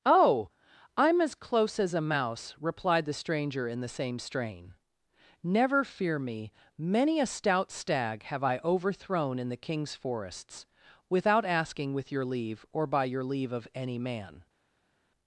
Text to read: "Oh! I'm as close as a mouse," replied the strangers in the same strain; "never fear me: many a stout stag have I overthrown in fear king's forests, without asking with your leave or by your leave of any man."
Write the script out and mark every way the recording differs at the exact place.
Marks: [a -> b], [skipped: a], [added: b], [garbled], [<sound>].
"Oh! I'm as close as a mouse," replied the [strangers -> stranger] in the same strain; "never fear me: many a stout stag have I overthrown in [fear -> the] king's forests, without asking with your leave or by your leave of any man."